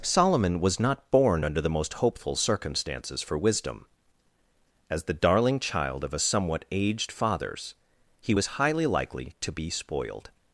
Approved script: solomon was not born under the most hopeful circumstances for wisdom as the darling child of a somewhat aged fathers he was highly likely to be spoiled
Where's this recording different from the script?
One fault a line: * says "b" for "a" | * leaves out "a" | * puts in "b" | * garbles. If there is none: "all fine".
all fine